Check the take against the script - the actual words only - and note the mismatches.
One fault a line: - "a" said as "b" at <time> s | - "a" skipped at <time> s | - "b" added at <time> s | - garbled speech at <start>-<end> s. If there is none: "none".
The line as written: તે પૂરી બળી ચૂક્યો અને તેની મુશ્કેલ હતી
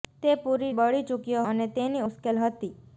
none